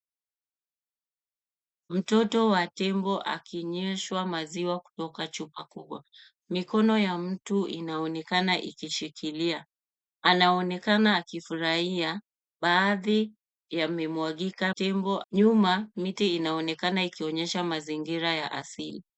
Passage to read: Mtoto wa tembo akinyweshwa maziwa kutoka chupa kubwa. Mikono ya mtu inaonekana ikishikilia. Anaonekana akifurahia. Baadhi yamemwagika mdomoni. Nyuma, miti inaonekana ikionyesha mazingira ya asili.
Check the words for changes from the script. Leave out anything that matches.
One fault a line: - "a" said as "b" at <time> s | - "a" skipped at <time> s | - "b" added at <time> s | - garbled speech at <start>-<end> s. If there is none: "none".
- "mdomoni" said as "tembo" at 14.7 s